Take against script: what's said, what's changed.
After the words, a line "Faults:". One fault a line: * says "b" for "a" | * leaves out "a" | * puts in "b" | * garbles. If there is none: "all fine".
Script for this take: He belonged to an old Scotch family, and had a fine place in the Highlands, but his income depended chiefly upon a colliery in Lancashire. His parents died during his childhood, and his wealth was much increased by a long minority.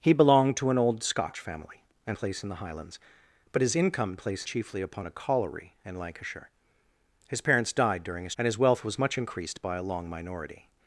He belonged to an old Scotch family, and place in the Highlands, but his income place chiefly upon a colliery in Lancashire. His parents died during his and his wealth was much increased by a long minority.
Faults:
* leaves out "had a fine"
* says "place" for "depended"
* leaves out "childhood"